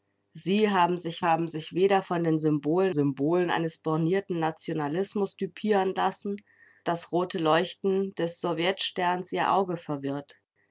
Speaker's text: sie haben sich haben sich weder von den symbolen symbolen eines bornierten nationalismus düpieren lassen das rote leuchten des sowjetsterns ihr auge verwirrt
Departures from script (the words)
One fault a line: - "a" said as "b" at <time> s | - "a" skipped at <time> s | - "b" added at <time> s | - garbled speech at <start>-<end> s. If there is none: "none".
none